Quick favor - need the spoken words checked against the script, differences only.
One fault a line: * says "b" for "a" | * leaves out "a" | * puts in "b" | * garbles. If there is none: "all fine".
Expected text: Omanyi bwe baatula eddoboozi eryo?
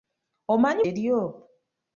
* leaves out "bwe baatula eddoboozi"